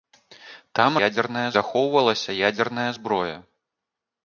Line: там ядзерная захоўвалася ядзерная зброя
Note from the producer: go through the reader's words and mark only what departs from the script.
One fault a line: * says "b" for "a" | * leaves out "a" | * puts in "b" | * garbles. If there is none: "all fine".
all fine